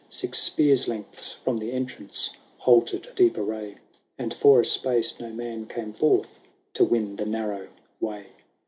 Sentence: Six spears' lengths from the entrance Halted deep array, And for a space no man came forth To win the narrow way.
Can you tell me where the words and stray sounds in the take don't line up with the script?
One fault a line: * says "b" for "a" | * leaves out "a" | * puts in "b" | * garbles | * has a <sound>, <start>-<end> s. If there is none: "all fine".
all fine